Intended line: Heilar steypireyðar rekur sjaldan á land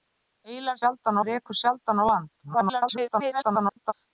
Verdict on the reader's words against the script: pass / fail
fail